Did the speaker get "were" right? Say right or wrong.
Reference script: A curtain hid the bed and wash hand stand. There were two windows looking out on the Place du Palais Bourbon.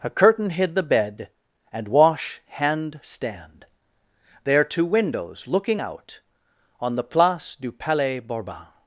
wrong